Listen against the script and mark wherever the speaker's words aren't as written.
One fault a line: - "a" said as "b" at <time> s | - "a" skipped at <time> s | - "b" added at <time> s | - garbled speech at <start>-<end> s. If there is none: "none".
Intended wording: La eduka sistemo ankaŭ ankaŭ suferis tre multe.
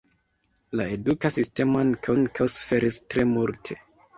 none